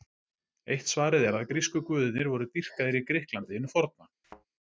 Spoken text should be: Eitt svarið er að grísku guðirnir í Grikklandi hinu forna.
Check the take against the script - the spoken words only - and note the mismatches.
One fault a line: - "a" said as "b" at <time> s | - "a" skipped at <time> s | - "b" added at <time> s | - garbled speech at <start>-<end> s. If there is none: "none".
- "voru dýrkaðir" added at 2.3 s